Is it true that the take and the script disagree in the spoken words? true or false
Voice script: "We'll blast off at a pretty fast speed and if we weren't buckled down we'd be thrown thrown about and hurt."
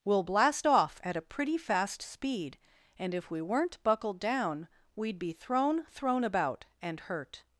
false